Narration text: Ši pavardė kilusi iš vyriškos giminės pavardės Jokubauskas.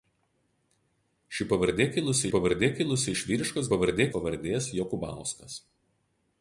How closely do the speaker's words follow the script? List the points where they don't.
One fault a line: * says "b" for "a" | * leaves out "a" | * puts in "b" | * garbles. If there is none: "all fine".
* puts in "pavardė kilusi"
* says "pavardė" for "giminės"